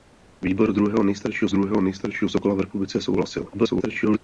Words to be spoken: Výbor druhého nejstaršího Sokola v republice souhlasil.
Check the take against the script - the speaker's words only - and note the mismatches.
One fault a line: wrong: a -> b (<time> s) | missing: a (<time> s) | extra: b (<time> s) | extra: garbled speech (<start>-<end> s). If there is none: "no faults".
extra: druhého nejstaršího (1.5 s)
extra: garbled speech (3.5-4.2 s)